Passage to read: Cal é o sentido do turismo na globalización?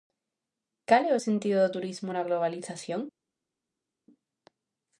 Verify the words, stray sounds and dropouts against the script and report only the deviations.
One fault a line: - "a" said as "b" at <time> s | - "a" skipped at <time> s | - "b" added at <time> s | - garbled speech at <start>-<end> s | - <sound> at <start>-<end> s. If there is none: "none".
none